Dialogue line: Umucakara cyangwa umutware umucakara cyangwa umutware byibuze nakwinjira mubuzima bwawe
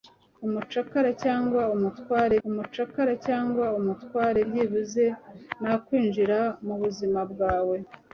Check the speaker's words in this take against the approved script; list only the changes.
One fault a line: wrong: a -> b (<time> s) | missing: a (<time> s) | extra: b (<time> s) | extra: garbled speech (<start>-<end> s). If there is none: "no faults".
no faults